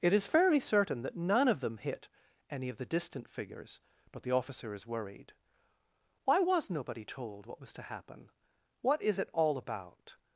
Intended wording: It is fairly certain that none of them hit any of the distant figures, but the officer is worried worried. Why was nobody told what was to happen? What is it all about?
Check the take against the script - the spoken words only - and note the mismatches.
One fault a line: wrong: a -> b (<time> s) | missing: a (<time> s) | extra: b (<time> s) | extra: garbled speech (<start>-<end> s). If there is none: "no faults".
missing: worried (5.3 s)